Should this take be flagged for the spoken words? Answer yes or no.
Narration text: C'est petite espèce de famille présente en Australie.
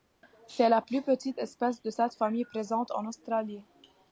yes